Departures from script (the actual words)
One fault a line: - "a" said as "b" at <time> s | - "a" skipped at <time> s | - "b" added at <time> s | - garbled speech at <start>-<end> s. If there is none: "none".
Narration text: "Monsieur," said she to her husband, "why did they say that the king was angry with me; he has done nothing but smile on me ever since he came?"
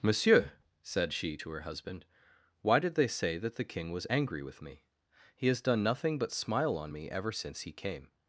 none